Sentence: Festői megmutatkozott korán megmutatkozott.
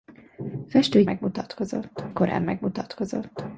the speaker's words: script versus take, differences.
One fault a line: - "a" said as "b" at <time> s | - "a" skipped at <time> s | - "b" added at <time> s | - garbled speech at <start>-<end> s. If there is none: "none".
none